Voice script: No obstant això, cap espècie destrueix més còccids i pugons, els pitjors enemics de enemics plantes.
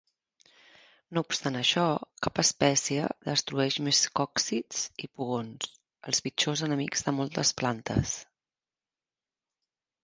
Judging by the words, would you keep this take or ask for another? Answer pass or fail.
fail